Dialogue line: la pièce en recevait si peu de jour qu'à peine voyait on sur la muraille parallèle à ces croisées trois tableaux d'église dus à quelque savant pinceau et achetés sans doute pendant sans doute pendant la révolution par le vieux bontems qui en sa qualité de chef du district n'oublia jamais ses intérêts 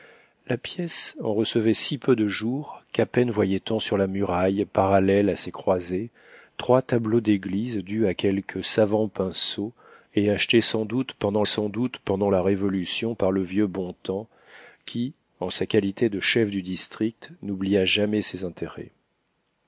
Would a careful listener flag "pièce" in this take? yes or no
no